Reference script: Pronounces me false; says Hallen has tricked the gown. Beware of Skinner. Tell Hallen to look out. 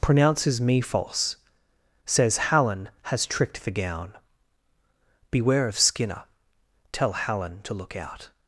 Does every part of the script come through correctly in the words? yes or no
yes